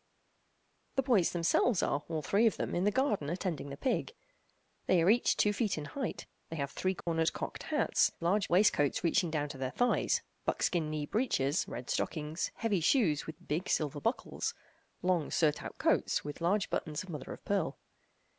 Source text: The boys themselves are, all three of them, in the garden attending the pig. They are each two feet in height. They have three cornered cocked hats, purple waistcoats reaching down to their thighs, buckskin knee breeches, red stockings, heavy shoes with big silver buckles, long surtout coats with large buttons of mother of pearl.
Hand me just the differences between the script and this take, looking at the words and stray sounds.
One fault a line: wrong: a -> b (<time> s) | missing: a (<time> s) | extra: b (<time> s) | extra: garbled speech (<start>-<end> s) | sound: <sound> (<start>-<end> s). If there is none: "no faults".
sound: dropout (7.0-7.1 s)
wrong: purple -> large (8.2 s)